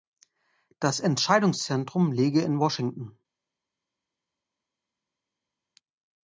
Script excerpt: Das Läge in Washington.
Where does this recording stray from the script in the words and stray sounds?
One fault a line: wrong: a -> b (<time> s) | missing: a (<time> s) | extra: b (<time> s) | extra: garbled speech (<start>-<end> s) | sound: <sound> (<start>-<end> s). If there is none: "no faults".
extra: Entscheidungszentrum (1.0 s)